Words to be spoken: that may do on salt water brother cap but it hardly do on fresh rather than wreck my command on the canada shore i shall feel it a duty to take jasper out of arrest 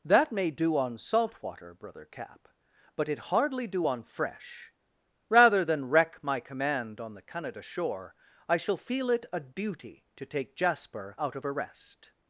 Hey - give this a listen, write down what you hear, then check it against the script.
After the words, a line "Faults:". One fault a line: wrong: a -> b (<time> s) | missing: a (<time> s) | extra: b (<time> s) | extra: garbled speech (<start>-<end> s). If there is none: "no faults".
that may do on salt water brother cap but it hardly do on fresh rather than wreck my command on the canada shore i shall feel it a duty to take jasper out of arrest
Faults:
no faults